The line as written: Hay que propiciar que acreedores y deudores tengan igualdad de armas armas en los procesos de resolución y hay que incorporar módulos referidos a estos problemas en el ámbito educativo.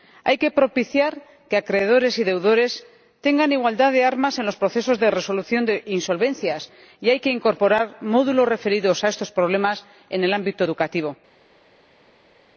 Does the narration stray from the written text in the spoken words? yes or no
yes